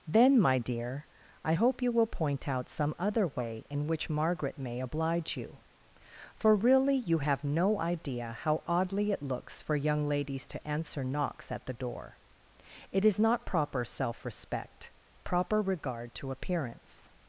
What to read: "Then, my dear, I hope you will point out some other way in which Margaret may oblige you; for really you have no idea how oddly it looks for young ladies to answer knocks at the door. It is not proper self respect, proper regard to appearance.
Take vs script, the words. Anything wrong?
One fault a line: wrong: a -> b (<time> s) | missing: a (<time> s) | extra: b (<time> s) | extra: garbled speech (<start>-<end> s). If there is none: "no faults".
no faults